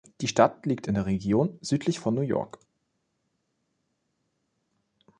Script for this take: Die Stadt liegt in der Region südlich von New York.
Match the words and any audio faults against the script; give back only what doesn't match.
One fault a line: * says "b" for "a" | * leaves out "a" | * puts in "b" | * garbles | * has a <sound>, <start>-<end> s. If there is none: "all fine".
all fine